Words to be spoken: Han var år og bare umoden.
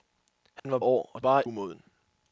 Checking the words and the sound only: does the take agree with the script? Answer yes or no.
no